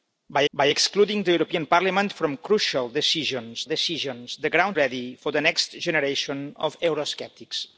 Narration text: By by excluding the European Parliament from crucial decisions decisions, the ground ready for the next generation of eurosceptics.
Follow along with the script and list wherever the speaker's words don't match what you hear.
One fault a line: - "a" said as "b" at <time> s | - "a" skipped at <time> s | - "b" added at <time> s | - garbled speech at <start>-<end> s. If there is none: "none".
none